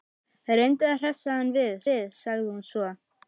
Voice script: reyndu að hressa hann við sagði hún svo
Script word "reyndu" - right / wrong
right